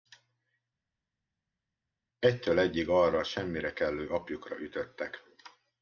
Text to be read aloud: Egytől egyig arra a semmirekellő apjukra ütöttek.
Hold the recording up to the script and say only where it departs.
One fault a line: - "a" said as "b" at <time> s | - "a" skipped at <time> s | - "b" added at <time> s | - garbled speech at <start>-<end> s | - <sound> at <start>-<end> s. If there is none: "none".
none